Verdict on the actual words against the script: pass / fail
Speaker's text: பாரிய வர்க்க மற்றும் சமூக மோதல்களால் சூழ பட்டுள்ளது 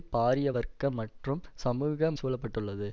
fail